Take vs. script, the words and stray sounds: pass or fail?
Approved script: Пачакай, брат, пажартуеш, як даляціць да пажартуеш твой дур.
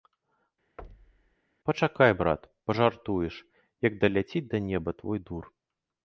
fail